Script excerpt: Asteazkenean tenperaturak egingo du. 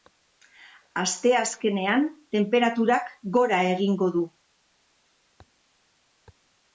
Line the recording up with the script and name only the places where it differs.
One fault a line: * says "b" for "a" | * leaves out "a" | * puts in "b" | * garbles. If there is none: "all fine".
* puts in "gora"